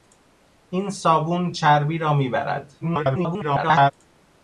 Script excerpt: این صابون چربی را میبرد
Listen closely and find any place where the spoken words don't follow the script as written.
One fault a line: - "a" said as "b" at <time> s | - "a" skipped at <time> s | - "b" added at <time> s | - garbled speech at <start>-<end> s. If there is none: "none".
- garbled speech at 2.8-3.9 s